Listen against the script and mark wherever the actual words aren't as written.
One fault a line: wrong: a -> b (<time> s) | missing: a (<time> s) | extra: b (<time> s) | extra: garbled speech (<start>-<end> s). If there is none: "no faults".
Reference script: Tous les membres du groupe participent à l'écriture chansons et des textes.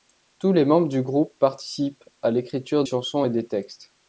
no faults